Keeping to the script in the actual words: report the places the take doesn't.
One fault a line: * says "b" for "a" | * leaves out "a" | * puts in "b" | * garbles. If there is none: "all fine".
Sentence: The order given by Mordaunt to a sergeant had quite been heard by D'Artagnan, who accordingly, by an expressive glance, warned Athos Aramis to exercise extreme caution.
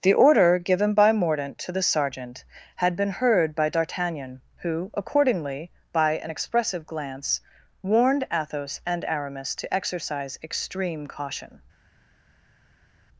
* says "the" for "a"
* leaves out "quite"
* puts in "and"